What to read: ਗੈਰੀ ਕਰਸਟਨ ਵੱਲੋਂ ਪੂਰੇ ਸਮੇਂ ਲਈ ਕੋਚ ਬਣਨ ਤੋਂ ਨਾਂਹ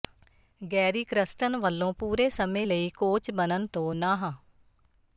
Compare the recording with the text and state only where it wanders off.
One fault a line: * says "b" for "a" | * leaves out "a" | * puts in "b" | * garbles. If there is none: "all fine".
all fine